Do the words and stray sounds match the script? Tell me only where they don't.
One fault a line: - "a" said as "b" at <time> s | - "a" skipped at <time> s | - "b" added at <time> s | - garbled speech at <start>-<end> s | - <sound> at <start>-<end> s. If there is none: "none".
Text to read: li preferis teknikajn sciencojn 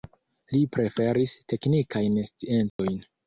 - dropout at 2.7-2.8 s